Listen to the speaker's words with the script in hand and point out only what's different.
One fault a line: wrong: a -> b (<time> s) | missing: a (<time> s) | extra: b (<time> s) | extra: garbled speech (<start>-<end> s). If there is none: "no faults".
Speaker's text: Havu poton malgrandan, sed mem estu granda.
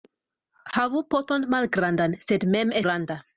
missing: estu (2.8 s)